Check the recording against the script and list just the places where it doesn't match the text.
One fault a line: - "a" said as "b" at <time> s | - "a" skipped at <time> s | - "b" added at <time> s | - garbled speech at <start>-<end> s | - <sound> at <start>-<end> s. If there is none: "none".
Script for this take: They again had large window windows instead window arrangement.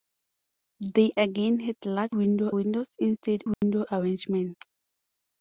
- dropout at 3.5-3.6 s